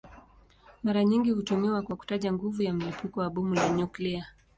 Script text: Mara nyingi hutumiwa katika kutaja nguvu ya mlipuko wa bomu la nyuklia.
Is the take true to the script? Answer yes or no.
no